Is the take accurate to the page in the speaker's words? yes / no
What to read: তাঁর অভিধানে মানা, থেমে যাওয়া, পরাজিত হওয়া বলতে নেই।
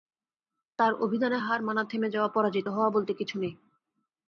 no